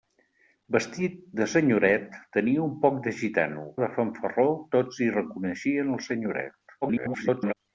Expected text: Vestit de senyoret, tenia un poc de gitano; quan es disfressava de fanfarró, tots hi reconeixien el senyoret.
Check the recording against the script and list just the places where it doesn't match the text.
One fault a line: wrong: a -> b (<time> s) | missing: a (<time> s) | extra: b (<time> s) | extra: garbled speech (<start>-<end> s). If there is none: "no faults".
missing: quan es disfressava (3.6 s)
extra: garbled speech (6.8-7.5 s)